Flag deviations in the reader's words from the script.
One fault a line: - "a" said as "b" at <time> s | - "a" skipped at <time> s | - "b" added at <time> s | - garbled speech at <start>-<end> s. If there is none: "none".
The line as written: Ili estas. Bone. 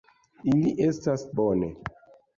none